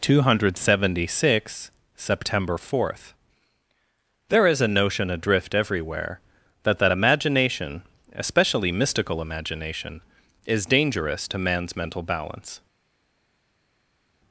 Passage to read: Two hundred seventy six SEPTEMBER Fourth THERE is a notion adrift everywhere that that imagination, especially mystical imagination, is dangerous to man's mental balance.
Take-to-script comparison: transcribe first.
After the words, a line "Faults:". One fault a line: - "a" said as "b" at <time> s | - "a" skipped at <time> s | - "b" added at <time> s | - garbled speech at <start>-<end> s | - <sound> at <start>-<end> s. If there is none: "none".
Two hundred seventy six SEPTEMBER Fourth THERE is a notion adrift everywhere that that imagination, especially mystical imagination, is dangerous to man's mental balance.
Faults:
none